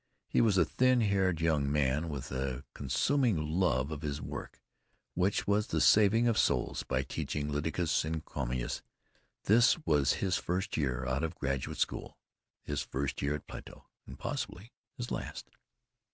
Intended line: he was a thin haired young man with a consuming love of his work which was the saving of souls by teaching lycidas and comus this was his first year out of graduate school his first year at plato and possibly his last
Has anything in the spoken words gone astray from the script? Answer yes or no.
no